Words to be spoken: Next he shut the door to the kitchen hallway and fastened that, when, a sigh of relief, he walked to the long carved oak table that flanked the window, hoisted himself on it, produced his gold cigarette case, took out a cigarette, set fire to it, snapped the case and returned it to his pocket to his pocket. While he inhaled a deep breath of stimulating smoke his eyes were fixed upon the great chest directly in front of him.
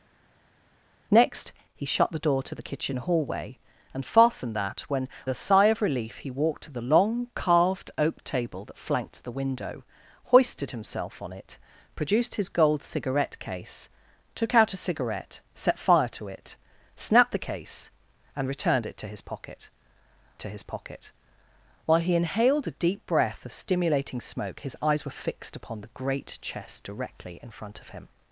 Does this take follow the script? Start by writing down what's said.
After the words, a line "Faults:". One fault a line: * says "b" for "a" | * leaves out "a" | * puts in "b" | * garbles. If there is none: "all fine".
Next he shut the door to the kitchen hallway and fastened that, when, a sigh of relief, he walked to the long carved oak table that flanked the window, hoisted himself on it, produced his gold cigarette case, took out a cigarette, set fire to it, snapped the case and returned it to his pocket to his pocket. While he inhaled a deep breath of stimulating smoke his eyes were fixed upon the great chest directly in front of him.
Faults:
all fine